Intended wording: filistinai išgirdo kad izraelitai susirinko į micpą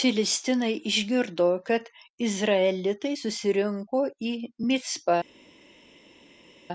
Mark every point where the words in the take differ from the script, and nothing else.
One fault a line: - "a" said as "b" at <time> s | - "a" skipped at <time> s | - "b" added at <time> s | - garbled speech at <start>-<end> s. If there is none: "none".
none